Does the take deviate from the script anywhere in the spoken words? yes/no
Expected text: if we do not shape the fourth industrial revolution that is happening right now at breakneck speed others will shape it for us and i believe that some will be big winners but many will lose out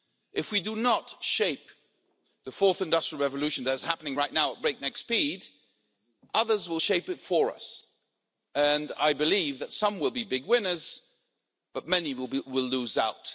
no